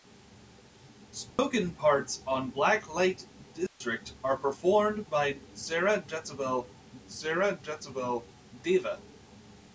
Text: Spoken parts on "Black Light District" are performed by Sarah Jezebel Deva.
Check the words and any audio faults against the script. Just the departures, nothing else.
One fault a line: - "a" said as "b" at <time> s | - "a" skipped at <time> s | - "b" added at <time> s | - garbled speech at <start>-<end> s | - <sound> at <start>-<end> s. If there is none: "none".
- dropout at 1.3-1.4 s
- dropout at 3.7-3.8 s
- "Sarah Jezebel" added at 7.1 s